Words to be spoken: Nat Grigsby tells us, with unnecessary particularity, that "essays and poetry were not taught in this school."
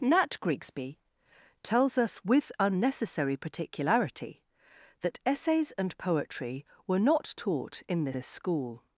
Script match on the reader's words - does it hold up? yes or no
no